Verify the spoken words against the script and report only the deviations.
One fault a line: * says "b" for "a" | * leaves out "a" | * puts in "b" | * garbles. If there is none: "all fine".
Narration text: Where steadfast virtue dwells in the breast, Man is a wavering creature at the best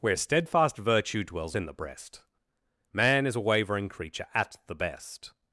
all fine